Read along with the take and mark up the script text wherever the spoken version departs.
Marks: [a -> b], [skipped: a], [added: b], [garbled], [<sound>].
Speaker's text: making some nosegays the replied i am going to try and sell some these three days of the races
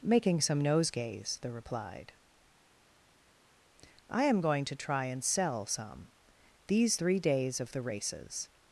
making some nosegays the replied i am going to try and sell some these three days of the races